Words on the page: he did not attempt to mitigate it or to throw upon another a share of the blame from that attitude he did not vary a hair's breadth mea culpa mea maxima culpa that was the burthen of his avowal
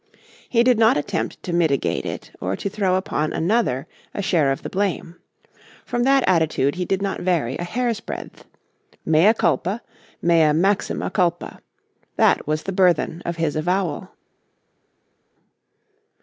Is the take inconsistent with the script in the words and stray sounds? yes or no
no